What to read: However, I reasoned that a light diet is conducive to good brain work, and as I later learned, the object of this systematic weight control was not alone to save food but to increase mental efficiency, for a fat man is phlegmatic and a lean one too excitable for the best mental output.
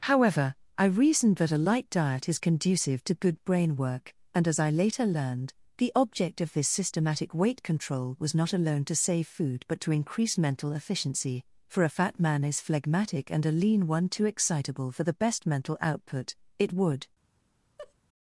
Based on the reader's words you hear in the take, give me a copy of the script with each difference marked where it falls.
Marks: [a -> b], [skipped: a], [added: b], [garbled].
However, I reasoned that a light diet is conducive to good brain work, and as I later learned, the object of this systematic weight control was not alone to save food but to increase mental efficiency, for a fat man is phlegmatic and a lean one too excitable for the best mental output. [added: It would]